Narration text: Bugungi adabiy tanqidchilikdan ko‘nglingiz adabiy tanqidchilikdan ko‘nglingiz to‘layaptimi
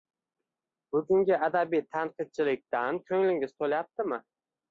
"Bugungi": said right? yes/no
yes